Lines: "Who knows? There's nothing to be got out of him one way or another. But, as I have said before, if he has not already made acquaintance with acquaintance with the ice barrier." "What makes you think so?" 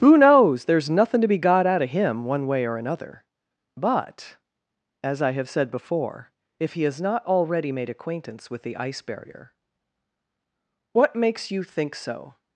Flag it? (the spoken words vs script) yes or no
yes